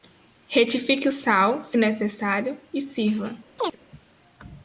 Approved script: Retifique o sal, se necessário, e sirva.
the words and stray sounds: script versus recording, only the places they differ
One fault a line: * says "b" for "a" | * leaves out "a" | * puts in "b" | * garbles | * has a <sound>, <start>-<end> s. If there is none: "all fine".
* has a chirp, 3.6-3.8 s